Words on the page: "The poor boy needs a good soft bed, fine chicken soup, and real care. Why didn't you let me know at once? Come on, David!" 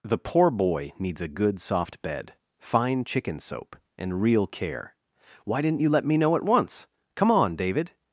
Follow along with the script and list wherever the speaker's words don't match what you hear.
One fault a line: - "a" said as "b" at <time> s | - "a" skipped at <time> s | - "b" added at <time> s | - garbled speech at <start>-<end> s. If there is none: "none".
- "soup" said as "soap" at 3.4 s